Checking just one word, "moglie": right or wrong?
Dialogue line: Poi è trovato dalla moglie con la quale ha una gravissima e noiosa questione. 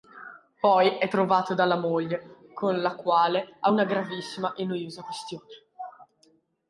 right